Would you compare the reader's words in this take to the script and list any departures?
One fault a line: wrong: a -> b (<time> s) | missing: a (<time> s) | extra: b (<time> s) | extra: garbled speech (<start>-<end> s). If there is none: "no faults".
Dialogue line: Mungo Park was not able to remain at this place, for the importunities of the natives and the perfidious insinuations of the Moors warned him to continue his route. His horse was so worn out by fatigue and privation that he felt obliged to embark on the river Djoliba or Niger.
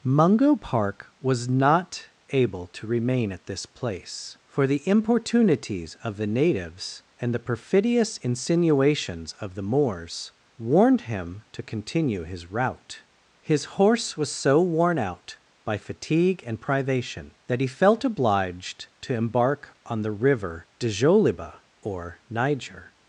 no faults